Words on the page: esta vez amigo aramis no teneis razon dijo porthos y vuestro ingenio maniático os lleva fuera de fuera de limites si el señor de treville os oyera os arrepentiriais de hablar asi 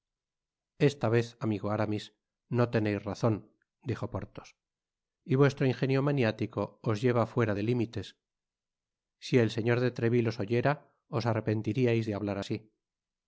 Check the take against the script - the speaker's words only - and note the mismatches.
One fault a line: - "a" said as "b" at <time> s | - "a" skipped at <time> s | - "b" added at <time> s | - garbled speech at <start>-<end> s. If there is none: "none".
- "fuera de" skipped at 7.6 s